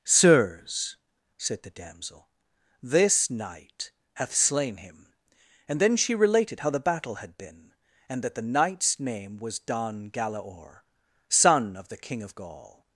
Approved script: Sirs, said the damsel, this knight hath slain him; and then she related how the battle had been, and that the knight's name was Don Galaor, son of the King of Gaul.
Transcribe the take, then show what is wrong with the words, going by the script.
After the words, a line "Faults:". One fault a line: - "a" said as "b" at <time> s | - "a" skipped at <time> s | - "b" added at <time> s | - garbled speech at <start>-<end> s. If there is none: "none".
Sirs, said the damsel, this knight hath slain him; and then she related how the battle had been, and that the knight's name was Don Galaor, son of the King of Gaul.
Faults:
none